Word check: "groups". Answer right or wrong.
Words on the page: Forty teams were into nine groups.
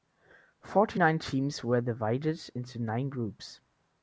right